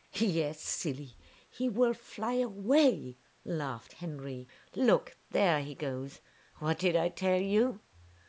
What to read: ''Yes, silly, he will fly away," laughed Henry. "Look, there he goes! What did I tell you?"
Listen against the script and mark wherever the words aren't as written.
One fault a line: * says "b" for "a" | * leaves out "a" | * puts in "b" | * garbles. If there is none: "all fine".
all fine